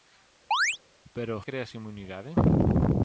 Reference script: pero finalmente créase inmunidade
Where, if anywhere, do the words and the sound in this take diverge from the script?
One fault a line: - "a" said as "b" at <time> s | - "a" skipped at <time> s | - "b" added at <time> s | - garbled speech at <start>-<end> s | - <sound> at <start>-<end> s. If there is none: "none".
- chirp at 0.5-0.8 s
- "finalmente" skipped at 1.4 s